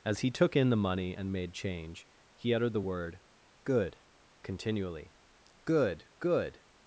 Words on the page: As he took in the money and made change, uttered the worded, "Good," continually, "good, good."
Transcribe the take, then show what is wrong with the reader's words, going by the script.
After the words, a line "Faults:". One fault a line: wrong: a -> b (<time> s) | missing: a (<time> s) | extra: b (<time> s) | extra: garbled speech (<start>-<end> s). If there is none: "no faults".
As he took in the money and made change, he uttered the word, "Good," continually, "good, good."
Faults:
extra: he (2.3 s)
wrong: worded -> word (2.8 s)